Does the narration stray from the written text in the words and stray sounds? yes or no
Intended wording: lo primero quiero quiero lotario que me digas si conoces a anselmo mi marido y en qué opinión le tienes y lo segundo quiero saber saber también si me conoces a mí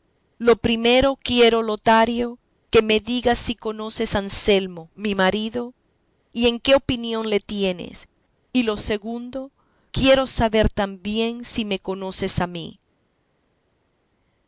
yes